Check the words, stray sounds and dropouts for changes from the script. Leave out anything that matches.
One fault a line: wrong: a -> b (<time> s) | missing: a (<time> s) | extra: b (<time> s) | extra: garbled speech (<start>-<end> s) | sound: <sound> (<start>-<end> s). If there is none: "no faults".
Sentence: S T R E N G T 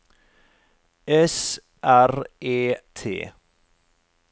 missing: T (1.6 s)
missing: N G (2.7 s)